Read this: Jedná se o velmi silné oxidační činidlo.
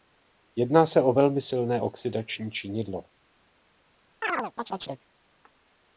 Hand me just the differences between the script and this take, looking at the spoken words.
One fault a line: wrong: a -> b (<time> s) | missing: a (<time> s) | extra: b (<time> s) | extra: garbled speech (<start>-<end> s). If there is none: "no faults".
no faults